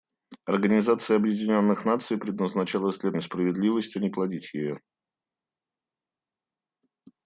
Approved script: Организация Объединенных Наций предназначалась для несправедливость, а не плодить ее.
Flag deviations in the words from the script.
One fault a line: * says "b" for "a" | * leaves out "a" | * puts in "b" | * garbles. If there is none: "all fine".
all fine